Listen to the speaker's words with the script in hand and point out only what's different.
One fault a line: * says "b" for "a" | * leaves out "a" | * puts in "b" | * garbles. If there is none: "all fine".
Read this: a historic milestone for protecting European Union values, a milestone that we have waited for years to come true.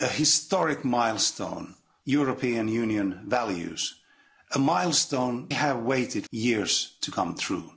* leaves out "for protecting"
* leaves out "that we"
* leaves out "for"